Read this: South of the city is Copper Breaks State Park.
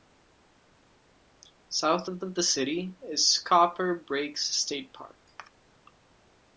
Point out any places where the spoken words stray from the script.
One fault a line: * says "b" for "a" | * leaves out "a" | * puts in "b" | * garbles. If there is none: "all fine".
* puts in "of"